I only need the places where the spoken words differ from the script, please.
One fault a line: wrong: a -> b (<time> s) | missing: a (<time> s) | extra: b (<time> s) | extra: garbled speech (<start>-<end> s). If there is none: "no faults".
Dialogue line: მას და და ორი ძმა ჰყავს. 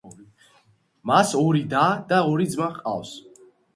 extra: ორი (1.4 s)